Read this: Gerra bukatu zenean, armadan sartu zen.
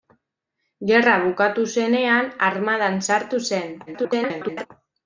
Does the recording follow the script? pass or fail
fail